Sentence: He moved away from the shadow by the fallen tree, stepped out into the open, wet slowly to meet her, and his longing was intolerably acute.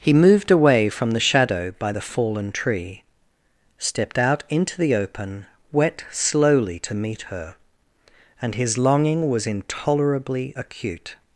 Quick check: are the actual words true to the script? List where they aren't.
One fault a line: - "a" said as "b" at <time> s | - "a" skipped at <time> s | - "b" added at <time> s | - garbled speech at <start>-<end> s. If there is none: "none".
none